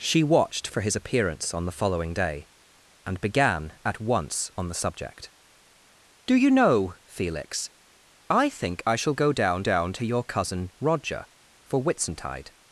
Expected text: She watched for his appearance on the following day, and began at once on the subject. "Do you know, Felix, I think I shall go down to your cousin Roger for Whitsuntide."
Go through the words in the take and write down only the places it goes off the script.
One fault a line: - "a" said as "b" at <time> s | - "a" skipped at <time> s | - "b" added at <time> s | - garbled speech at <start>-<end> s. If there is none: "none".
- "down" added at 9.6 s